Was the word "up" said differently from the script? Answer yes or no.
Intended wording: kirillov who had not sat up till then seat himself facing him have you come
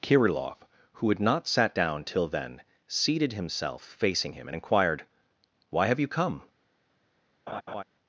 yes